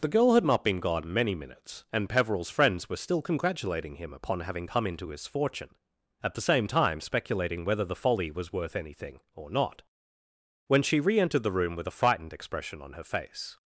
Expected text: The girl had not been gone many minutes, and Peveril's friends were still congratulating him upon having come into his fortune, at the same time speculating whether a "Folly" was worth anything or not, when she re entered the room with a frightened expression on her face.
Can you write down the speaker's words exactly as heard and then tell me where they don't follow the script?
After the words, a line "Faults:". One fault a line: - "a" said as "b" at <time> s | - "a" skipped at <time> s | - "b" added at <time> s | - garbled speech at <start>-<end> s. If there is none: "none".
The girl had not been gone many minutes, and Peveril's friends were still congratulating him upon having come into his fortune, at the same time speculating whether the "Folly" was worth anything or not, when she re entered the room with a frightened expression on her face.
Faults:
- "a" said as "the" at 7.8 s